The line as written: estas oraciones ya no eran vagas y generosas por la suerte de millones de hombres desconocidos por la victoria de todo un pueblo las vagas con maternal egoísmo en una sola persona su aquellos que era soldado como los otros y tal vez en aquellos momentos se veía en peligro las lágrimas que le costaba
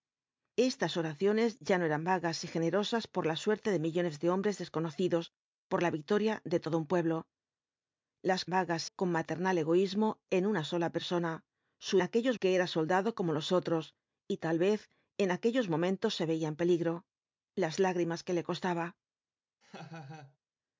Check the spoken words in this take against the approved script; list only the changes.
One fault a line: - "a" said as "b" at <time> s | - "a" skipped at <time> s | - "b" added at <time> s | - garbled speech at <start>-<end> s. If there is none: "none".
none